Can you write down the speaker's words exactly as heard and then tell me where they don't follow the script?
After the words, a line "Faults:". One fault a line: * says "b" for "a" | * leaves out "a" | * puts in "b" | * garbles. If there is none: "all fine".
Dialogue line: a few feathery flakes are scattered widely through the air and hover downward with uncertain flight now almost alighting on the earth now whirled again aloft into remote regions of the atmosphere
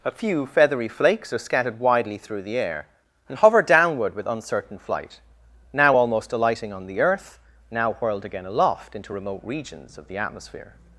a few feathery flakes are scattered widely through the air and hover downward with uncertain flight now almost alighting on the earth now whirled again aloft into remote regions of the atmosphere
Faults:
all fine